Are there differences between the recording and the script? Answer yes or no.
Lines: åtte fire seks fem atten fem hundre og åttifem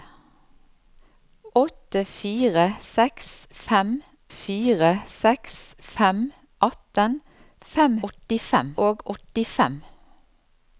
yes